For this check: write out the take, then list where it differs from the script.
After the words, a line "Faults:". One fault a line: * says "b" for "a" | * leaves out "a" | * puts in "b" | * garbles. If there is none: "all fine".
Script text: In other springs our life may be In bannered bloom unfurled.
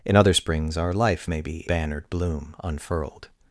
In other springs our life may be Bannered bloom unfurled.
Faults:
* leaves out "In"